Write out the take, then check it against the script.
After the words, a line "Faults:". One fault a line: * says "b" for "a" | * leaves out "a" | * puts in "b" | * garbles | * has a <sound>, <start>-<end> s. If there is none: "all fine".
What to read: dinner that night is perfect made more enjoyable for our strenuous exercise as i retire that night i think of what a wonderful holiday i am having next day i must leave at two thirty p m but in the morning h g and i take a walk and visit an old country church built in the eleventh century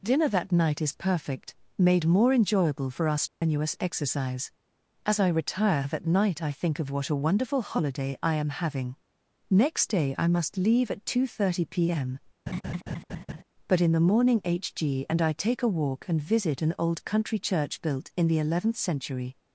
dinner that night is perfect made more enjoyable for our strenuous exercise as i retire that night i think of what a wonderful holiday i am having next day i must leave at two thirty p m but in the morning h g and i take a walk and visit an old country church built in the eleventh century
Faults:
* has a dropout, 3.3-3.4 s
* has a laugh, 12.5-13.4 s